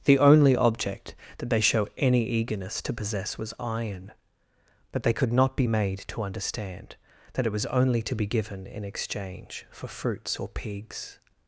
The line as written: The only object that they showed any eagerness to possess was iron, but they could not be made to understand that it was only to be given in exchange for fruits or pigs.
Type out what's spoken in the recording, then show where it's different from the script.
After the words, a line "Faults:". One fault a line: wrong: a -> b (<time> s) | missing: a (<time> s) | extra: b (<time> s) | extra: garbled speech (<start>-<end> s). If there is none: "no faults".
The only object that they show any eagerness to possess was iron, but they could not be made to understand that it was only to be given in exchange for fruits or pigs.
Faults:
wrong: showed -> show (1.6 s)